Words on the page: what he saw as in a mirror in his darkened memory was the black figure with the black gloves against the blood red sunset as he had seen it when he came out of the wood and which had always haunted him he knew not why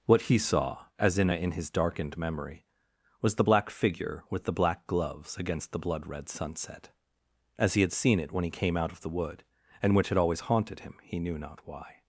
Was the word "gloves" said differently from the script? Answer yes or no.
no